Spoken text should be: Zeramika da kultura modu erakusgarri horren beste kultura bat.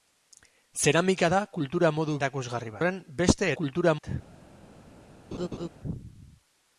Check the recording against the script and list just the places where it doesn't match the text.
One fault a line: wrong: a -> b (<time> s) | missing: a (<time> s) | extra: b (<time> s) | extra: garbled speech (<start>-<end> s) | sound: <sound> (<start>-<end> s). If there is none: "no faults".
sound: laugh (5.3-5.7 s)